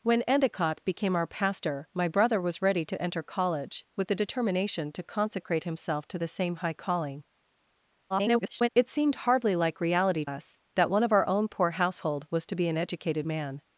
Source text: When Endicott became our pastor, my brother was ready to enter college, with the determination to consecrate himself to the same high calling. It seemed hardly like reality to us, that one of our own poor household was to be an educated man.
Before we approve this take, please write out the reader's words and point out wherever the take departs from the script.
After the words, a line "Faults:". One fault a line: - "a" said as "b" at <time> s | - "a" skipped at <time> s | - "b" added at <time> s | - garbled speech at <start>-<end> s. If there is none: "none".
When Endicott became our pastor, my brother was ready to enter college, with the determination to consecrate himself to the same high calling. [garbled] It seemed hardly like reality us, that one of our own poor household was to be an educated man.
Faults:
- garbled speech at 8.1-8.7 s
- "to" skipped at 10.2 s